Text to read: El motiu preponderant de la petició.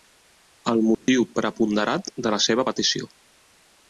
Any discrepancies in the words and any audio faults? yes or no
yes